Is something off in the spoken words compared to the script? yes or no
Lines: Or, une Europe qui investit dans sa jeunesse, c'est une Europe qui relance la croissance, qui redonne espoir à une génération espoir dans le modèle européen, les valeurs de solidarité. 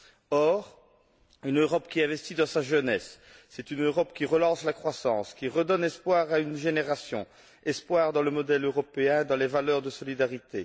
yes